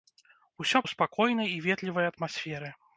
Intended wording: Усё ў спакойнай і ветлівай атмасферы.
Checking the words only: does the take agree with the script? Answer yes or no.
yes